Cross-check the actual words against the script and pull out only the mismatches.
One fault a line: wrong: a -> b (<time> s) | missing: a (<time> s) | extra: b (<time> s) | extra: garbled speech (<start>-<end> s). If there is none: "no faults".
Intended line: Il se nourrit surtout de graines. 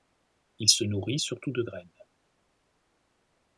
no faults